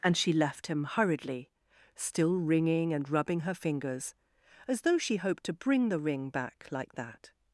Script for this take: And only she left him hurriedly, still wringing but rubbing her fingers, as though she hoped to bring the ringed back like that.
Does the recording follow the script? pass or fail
fail